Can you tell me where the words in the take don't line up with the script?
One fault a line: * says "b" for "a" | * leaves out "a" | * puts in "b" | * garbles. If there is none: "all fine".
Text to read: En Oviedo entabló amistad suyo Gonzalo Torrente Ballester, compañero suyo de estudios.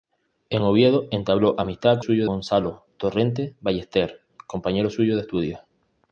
all fine